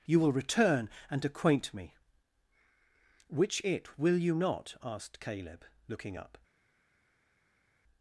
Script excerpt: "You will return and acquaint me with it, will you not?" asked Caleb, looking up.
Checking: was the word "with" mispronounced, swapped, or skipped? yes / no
yes